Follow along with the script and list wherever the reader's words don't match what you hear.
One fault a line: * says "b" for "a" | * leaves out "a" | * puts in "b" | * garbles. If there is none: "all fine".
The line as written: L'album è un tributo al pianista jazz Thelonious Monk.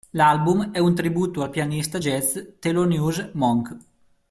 all fine